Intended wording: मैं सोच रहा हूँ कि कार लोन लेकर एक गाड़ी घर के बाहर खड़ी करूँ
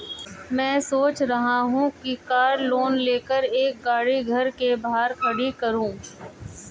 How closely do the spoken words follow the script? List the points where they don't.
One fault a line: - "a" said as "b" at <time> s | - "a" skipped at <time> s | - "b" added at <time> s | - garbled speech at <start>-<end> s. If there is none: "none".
none